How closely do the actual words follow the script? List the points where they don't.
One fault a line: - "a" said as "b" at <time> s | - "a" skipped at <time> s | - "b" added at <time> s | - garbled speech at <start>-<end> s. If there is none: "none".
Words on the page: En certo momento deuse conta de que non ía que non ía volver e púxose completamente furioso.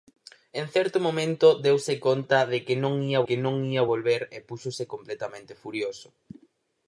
none